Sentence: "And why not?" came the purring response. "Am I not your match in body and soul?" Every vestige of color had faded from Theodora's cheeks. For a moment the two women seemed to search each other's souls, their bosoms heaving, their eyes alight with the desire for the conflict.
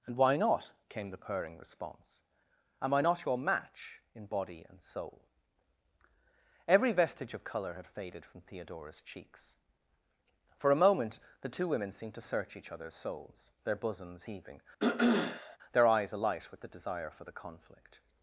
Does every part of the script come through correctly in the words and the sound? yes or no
no